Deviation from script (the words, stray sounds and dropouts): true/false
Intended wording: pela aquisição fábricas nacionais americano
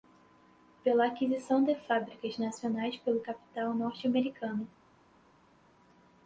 true